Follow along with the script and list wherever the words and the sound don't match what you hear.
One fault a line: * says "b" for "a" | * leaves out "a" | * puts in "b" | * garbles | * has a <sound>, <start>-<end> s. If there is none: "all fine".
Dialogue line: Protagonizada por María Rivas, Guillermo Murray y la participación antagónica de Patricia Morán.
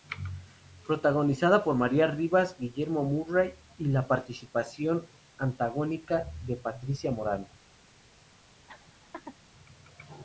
* has a laugh, 8.7-9.4 s